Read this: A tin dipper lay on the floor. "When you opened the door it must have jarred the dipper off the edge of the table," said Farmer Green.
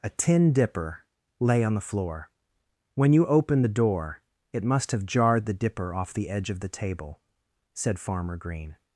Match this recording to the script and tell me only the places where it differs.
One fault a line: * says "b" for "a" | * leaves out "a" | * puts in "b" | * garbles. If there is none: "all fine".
all fine